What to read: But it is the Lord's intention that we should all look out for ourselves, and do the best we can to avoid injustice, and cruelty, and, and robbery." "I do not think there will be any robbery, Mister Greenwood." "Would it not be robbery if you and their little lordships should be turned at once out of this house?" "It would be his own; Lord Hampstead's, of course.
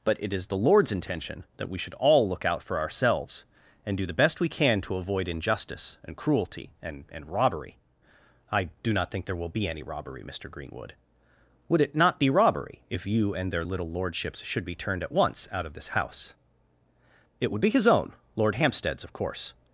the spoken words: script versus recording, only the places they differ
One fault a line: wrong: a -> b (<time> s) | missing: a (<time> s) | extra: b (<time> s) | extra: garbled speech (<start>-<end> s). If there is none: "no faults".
no faults